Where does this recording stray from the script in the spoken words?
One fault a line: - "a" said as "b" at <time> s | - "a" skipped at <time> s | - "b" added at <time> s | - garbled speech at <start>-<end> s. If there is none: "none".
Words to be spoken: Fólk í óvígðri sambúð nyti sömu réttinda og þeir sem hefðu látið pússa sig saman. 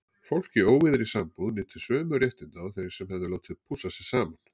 none